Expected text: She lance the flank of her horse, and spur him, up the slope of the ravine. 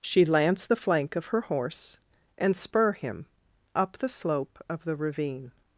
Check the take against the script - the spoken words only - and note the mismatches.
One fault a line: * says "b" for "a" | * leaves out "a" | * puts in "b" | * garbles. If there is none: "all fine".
all fine